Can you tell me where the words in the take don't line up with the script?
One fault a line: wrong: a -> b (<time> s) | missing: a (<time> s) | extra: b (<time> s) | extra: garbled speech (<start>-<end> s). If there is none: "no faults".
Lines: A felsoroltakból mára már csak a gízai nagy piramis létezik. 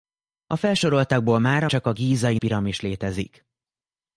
missing: már (1.7 s)
missing: nagy (2.4 s)